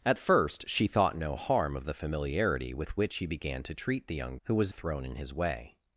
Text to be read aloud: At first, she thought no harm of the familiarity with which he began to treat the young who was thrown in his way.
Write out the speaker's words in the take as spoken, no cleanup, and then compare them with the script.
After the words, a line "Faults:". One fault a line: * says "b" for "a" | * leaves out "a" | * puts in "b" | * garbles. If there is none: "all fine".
At first, she thought no harm of the familiarity with which he began to treat the young who was thrown in his way.
Faults:
all fine